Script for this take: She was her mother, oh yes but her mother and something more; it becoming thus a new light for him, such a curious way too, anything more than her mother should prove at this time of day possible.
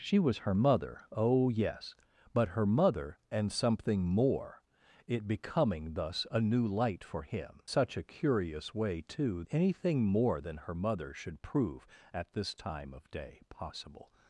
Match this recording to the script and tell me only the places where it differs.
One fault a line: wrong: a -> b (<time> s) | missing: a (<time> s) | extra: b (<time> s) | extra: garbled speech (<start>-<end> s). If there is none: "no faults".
no faults